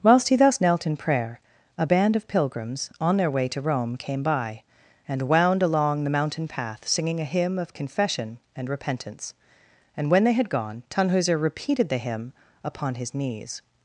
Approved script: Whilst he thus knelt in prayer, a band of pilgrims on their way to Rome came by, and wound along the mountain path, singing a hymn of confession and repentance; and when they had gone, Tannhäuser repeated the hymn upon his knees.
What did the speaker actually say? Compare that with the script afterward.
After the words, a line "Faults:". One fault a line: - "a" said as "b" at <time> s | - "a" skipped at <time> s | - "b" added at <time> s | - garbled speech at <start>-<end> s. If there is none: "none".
Whilst he thus knelt in prayer, a band of pilgrims on their way to Rome came by, and wound along the mountain path, singing a hymn of confession and repentance; and when they had gone, Tannhäuser repeated the hymn upon his knees.
Faults:
none